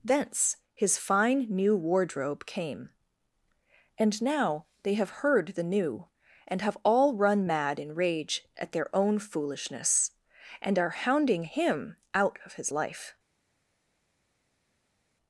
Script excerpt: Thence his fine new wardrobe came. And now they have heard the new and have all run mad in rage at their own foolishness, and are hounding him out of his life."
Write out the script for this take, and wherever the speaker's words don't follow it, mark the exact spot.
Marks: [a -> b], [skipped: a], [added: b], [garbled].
Thence his fine new wardrobe came. And now they have heard the new and have all run mad in rage at their own foolishness, and are hounding him out of his life."